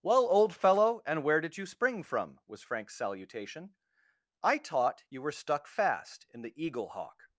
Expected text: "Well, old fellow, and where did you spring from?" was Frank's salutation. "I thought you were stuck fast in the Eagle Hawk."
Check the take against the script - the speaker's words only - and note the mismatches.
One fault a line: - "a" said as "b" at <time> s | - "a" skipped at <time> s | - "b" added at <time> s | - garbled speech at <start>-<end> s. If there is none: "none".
- "thought" said as "taught" at 4.6 s